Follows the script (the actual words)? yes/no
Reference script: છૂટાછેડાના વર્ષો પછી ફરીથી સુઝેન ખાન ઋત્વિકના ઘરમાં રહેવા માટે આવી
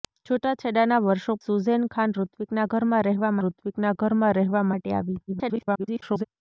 no